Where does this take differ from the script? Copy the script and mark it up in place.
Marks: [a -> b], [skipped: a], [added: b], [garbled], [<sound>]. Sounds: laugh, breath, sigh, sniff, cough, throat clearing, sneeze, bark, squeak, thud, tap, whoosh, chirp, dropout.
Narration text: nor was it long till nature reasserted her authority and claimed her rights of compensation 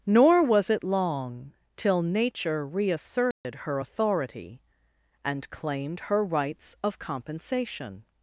nor was it long till nature reasserted [dropout] her authority and claimed her rights of compensation